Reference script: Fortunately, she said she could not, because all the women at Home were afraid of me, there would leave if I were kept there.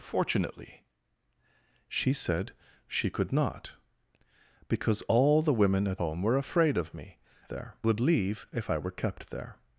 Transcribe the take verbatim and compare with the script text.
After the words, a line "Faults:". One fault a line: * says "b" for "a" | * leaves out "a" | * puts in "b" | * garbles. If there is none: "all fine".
Fortunately, she said she could not, because all the women at Home were afraid of me, there would leave if I were kept there.
Faults:
all fine